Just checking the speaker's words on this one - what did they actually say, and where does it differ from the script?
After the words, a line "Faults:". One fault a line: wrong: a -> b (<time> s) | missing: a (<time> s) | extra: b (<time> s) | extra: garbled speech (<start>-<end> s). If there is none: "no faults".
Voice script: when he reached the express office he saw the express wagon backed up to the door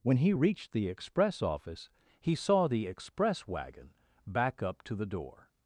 when he reached the express office he saw the express wagon back up to the door
Faults:
wrong: backed -> back (4.3 s)